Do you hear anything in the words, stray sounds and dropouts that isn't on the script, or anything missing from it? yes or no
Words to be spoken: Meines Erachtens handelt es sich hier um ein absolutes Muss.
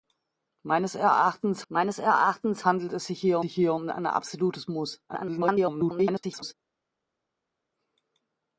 yes